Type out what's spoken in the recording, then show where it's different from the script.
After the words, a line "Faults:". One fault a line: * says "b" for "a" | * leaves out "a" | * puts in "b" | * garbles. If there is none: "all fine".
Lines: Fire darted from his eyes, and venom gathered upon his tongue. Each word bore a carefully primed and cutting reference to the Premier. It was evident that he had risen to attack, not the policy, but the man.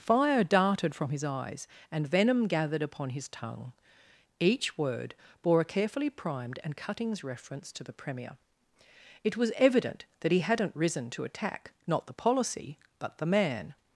Fire darted from his eyes, and venom gathered upon his tongue. Each word bore a carefully primed and cuttings reference to the Premier. It was evident that he hadn't risen to attack, not the policy, but the man.
Faults:
* says "cuttings" for "cutting"
* says "hadn't" for "had"